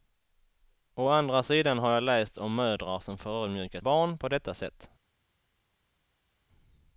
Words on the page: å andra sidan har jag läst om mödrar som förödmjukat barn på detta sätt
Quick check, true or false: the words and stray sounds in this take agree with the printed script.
true